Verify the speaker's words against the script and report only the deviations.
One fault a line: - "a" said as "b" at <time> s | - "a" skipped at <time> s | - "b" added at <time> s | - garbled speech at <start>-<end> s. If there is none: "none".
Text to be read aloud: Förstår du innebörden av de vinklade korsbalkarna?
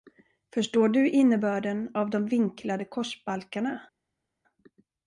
none